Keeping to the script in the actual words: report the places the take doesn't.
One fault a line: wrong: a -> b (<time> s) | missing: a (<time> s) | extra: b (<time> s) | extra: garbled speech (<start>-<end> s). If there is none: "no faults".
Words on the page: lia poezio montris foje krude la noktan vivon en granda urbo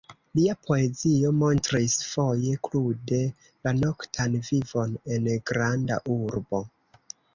no faults